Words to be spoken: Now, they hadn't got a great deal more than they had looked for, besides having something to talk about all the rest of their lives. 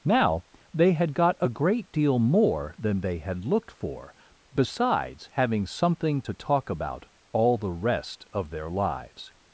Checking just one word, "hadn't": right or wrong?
wrong